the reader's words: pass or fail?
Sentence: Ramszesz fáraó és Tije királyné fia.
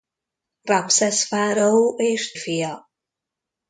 fail